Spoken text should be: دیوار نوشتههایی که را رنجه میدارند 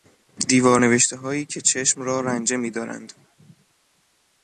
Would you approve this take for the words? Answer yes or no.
no